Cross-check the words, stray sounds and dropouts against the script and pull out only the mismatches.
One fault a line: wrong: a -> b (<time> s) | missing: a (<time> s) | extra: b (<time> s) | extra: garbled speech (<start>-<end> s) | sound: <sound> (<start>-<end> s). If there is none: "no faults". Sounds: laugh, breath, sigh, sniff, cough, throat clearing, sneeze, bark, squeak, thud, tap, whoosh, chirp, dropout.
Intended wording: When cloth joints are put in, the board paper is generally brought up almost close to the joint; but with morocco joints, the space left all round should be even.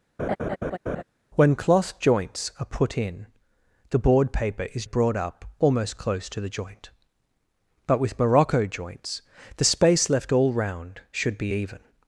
sound: laugh (0.2-1.0 s)
missing: generally (4.8 s)